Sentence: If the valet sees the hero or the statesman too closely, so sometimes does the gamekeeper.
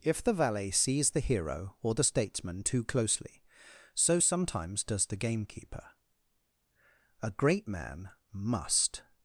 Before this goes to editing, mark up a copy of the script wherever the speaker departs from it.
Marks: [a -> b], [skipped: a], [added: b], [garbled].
If the valet sees the hero or the statesman too closely, so sometimes does the gamekeeper. [added: A great man must]